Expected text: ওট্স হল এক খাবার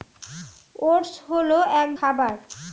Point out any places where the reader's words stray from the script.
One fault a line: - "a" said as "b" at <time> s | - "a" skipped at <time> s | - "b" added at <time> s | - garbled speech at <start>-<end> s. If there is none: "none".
none